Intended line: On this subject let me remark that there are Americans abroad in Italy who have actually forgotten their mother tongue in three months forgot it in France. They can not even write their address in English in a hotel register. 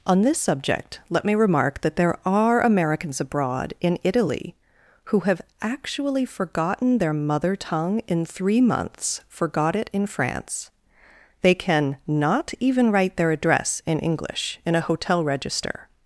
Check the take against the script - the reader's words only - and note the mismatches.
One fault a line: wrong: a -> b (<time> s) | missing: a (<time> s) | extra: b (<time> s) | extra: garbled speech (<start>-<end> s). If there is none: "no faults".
no faults